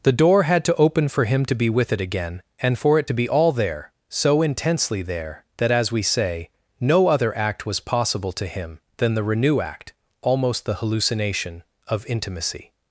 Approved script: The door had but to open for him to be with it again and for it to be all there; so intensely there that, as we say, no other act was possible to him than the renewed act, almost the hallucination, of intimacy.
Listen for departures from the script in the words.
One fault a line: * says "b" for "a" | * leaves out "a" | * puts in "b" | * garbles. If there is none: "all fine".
* leaves out "but"
* says "renew" for "renewed"